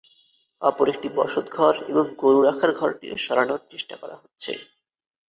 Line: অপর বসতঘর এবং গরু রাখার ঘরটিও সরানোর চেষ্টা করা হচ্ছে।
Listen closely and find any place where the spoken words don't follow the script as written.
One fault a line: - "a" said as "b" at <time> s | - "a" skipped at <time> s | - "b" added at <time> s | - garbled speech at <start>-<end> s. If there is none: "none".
- "একটি" added at 0.9 s